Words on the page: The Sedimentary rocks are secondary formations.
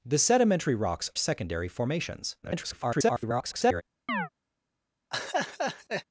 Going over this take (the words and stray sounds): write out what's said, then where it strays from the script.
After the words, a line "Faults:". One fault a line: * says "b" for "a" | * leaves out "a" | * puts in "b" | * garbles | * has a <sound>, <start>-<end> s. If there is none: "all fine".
The Sedimentary rocks secondary formations. [garbled]
Faults:
* leaves out "are"
* garbles
* has a chirp, 4.1-4.3 s
* has a laugh, 5.1-6.0 s